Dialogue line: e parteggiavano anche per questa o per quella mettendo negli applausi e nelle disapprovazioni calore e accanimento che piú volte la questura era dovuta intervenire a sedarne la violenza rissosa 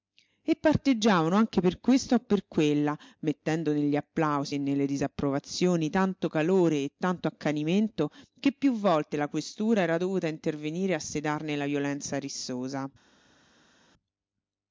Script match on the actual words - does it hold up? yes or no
no